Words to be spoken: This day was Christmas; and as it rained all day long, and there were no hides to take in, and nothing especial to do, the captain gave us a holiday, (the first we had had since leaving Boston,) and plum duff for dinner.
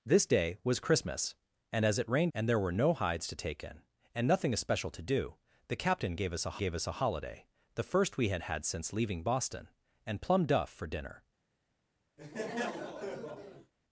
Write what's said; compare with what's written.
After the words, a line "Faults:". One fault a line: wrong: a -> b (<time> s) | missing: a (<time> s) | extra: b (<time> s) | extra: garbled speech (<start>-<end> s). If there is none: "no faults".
This day was Christmas; and as it rained and there were no hides to take in, and nothing especial to do, the captain gave us a gave us a holiday, (the first we had had since leaving Boston,) and plum duff for dinner.
Faults:
missing: all day long (2.3 s)
extra: gave us a (6.6 s)